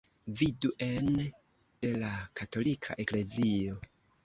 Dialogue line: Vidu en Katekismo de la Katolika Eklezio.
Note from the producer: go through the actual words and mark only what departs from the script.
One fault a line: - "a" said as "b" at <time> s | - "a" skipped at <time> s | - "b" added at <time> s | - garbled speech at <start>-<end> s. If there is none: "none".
- "Katekismo" skipped at 1.1 s